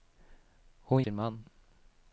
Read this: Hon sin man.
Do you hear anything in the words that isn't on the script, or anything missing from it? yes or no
no